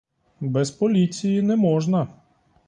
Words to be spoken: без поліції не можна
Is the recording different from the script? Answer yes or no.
no